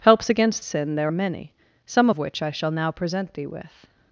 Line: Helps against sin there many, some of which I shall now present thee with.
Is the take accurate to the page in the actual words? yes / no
yes